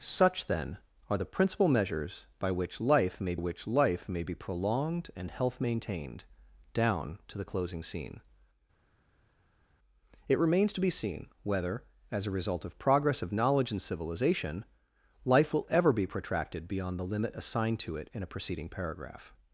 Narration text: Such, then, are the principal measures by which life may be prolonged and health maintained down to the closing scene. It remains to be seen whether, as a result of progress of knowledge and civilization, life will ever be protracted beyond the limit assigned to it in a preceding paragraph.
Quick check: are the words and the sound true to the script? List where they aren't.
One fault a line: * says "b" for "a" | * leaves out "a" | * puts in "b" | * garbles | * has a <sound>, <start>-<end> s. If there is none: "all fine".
* puts in "which life may"